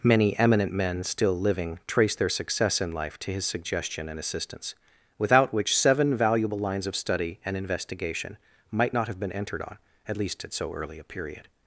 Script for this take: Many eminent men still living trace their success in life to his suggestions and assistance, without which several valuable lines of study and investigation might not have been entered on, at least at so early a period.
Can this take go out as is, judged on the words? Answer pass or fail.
fail